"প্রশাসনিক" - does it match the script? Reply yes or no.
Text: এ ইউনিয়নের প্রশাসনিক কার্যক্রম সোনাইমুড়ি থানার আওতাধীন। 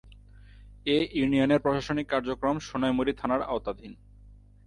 yes